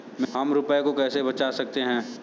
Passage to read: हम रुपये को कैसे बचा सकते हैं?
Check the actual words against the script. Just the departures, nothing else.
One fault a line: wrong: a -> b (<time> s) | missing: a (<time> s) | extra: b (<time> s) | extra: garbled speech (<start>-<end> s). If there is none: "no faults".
no faults